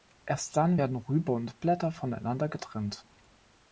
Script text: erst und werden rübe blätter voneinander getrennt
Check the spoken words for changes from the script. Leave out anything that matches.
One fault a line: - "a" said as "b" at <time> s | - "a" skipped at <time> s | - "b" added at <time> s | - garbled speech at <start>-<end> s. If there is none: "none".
- "und" said as "dann" at 0.6 s
- "und" added at 1.3 s